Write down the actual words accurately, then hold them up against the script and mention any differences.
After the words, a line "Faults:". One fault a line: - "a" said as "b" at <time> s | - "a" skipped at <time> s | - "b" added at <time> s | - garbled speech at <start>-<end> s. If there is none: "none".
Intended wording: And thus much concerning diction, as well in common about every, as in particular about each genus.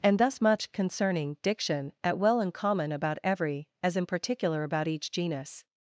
And thus much concerning diction, at well in common about every, as in particular about each genus.
Faults:
- "as" said as "at" at 2.0 s